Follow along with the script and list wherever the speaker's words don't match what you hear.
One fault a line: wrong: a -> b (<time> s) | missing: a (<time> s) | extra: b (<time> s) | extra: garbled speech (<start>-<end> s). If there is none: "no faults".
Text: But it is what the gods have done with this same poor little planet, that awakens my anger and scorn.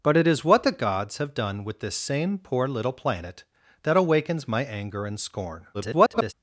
extra: garbled speech (5.7-6.3 s)